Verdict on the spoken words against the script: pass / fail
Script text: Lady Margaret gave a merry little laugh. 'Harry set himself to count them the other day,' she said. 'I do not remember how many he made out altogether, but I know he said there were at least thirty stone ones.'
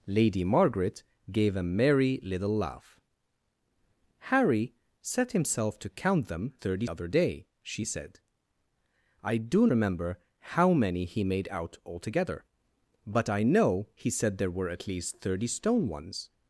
fail